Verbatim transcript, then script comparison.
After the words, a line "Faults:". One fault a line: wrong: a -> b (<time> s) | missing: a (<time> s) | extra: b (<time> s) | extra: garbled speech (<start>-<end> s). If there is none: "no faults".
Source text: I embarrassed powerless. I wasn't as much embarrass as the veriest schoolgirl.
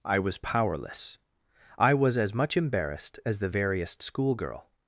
I was powerless. I was as much embarrassed as the veriest schoolgirl.
Faults:
wrong: embarrassed -> was (0.2 s)
wrong: wasn't -> was (1.9 s)
wrong: embarrass -> embarrassed (2.6 s)